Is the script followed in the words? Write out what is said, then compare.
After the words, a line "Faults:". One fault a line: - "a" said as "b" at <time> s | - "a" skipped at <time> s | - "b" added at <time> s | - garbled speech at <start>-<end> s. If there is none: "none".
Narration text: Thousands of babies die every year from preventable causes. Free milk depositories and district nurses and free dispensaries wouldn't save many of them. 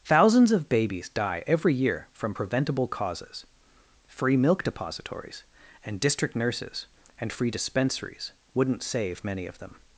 Thousands of babies die every year from preventable causes. Free milk depositories and district nurses and free dispensaries wouldn't save many of them.
Faults:
none